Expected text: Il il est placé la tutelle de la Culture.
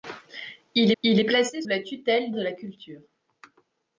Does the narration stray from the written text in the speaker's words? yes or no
no